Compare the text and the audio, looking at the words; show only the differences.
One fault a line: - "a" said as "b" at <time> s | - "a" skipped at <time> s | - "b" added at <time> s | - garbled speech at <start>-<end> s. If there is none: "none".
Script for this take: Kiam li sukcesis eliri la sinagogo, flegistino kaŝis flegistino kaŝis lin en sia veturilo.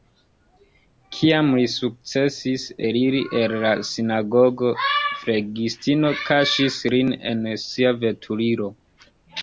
- "el" added at 3.4 s
- "flegistino kaŝis" skipped at 6.8 s